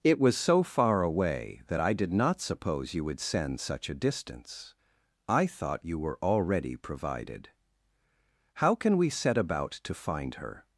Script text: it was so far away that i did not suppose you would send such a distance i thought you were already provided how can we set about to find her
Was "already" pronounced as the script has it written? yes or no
yes